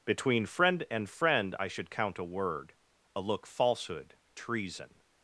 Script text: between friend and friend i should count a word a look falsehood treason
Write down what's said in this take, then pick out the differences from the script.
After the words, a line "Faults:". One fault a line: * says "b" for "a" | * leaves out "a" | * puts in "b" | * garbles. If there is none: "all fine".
between friend and friend i should count a word a look falsehood treason
Faults:
all fine